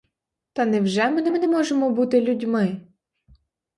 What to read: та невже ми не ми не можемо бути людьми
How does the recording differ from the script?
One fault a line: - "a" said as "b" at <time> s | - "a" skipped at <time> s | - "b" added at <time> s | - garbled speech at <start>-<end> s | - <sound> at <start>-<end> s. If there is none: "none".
none